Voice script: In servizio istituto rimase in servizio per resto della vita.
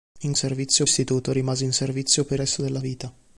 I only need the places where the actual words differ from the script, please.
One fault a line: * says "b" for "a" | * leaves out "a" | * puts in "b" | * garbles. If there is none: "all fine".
all fine